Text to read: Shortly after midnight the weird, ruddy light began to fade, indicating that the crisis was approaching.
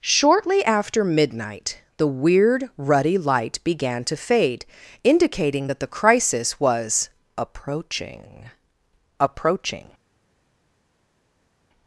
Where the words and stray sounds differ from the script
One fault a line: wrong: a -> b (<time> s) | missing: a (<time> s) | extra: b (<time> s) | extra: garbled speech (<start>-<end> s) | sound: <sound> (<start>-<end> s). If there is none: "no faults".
extra: approaching (9.2 s)